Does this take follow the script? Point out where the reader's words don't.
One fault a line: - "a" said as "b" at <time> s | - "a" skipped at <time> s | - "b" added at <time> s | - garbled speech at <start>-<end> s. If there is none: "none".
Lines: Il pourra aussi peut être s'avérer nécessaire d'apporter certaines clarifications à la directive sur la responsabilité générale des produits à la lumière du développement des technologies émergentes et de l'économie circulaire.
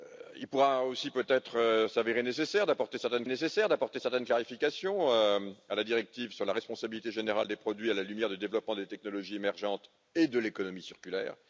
- "nécessaire d'apporter certaines" added at 3.3 s